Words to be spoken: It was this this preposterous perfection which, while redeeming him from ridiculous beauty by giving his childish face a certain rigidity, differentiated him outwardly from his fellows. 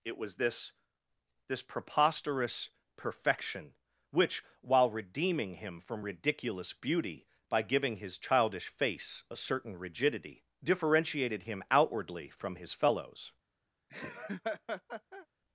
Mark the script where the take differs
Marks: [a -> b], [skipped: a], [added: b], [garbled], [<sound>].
It was this this preposterous perfection which, while redeeming him from ridiculous beauty by giving his childish face a certain rigidity, differentiated him outwardly from his fellows. [laugh]